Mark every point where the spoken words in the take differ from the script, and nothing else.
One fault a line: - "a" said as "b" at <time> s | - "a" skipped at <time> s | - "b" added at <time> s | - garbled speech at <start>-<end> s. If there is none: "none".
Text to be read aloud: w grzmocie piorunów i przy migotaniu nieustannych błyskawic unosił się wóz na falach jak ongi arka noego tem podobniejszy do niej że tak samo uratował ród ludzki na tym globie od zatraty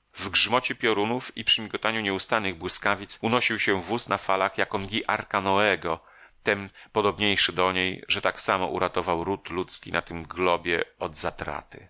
none